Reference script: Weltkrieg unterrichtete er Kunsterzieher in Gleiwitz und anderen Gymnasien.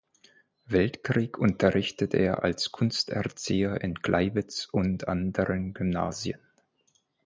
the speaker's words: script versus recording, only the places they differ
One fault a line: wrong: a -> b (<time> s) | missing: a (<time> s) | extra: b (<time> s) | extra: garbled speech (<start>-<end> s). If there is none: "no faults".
extra: als (2.4 s)